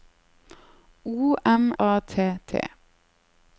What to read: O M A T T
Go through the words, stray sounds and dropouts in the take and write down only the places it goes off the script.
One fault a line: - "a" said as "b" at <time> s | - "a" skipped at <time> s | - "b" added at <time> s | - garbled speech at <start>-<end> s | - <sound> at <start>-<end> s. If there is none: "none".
none